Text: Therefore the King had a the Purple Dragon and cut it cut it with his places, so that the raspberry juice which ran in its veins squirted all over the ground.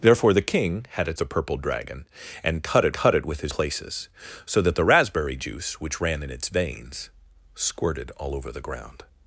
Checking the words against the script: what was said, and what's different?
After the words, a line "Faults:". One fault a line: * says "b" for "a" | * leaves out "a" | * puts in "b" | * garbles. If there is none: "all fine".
Therefore the King had a the Purple Dragon and cut it cut it with his places, so that the raspberry juice which ran in its veins squirted all over the ground.
Faults:
all fine